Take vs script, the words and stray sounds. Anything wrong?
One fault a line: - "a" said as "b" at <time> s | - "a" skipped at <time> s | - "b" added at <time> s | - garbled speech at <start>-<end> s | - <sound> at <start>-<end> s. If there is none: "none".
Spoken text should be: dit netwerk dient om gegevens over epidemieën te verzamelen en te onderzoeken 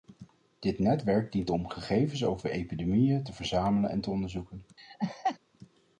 - laugh at 4.8-5.4 s